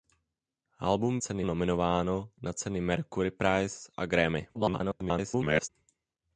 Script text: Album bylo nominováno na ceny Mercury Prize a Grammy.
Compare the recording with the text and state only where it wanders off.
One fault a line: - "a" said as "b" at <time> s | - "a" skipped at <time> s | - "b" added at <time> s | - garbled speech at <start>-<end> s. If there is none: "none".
- "bylo" said as "ceny" at 1.2 s
- garbled speech at 4.5-5.7 s